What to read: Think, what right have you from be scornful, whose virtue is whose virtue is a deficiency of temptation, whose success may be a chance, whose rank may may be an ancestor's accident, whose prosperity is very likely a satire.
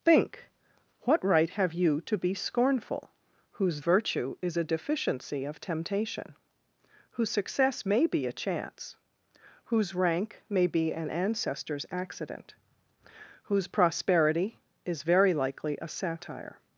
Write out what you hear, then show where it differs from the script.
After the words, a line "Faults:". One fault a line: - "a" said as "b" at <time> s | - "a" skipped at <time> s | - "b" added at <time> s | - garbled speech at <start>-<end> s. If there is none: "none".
Think, what right have you to be scornful, whose virtue is a deficiency of temptation, whose success may be a chance, whose rank may be an ancestor's accident, whose prosperity is very likely a satire.
Faults:
- "from" said as "to" at 2.0 s
- "whose virtue is" skipped at 4.5 s
- "may" skipped at 10.7 s